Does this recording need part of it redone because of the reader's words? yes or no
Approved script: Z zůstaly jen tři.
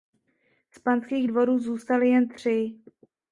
yes